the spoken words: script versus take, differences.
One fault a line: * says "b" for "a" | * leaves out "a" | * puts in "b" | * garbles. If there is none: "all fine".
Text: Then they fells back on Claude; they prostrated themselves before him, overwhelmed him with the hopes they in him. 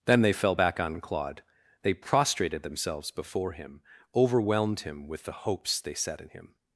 * says "fell" for "fells"
* puts in "set"